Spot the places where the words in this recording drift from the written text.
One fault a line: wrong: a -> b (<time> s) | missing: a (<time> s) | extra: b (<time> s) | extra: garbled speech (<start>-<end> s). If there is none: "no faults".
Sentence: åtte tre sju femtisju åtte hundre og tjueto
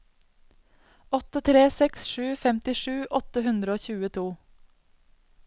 extra: seks (1.8 s)